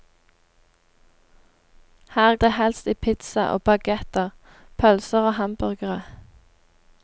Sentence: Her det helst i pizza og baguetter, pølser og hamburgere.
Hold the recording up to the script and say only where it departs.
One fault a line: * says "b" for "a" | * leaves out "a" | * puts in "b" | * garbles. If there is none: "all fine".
all fine